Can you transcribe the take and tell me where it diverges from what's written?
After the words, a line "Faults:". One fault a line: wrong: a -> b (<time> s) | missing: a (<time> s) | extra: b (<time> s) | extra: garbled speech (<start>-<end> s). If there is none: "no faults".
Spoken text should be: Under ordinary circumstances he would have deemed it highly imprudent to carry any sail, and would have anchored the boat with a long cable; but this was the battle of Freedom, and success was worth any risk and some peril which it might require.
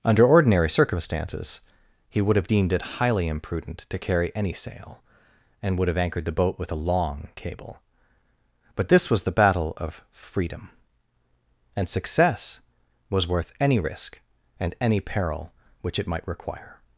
Under ordinary circumstances he would have deemed it highly imprudent to carry any sail, and would have anchored the boat with a long cable; but this was the battle of Freedom, and success was worth any risk and any peril which it might require.
Faults:
wrong: some -> any (14.8 s)